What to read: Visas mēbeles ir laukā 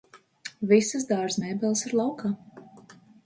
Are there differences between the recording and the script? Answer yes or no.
yes